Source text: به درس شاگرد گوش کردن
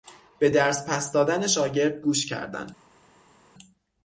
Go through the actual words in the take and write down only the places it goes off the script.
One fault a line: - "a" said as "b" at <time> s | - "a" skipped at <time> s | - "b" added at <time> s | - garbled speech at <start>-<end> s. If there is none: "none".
- "پس دادن" added at 0.9 s